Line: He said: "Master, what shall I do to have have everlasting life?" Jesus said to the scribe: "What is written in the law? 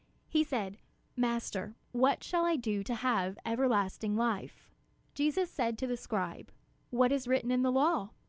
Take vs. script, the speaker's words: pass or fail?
fail